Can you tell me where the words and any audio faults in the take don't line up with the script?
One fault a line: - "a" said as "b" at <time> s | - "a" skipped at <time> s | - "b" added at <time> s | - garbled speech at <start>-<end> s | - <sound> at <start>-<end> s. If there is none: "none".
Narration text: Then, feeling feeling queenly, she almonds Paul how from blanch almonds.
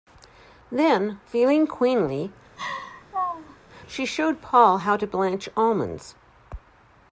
- "feeling" skipped at 1.7 s
- laugh at 2.6-3.6 s
- "almonds" said as "showed" at 4.0 s
- "from" said as "to" at 5.0 s